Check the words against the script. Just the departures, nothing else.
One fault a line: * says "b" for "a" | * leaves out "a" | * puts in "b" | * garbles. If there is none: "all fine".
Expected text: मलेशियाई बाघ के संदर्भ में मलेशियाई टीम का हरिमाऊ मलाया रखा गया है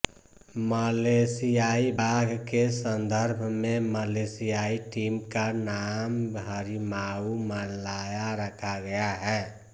* puts in "नाम"